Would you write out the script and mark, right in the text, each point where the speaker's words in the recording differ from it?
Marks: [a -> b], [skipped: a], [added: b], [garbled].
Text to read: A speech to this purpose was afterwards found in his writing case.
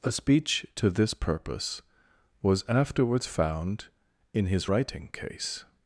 A speech to this purpose was afterwards found in his writing case.